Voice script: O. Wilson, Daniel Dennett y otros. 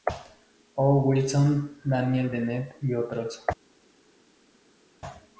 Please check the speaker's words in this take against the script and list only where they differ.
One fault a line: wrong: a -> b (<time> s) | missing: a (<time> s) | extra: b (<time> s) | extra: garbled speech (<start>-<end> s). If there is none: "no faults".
no faults